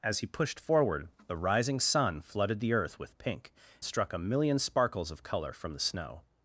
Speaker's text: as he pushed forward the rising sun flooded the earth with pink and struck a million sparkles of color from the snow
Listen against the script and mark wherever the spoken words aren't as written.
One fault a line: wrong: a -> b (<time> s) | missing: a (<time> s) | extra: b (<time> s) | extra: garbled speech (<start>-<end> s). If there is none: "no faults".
missing: and (3.5 s)